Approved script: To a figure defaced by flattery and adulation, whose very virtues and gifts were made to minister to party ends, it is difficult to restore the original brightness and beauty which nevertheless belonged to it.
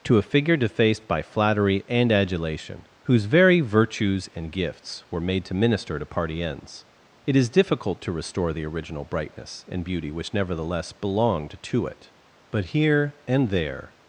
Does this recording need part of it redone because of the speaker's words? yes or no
yes